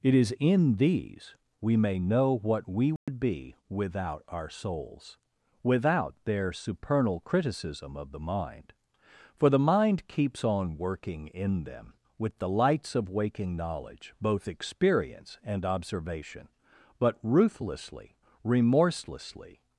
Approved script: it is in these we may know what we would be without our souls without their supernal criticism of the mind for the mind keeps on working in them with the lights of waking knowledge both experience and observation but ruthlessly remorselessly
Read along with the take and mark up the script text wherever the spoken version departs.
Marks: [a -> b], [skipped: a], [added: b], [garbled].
it is in these we may know what we would be without our souls without their supernal criticism of the mind for the mind keeps on working in them with the lights of waking knowledge both experience and observation but ruthlessly remorselessly